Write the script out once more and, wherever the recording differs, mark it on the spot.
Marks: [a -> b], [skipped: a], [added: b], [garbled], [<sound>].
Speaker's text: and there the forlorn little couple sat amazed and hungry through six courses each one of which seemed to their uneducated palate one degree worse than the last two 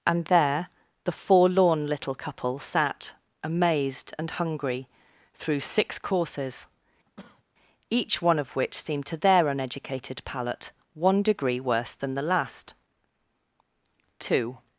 and there the forlorn little couple sat amazed and hungry through six courses [cough] each one of which seemed to their uneducated palate one degree worse than the last two